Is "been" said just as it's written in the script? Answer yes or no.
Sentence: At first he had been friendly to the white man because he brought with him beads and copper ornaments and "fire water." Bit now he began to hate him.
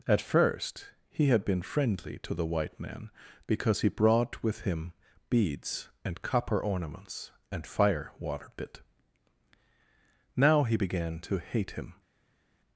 yes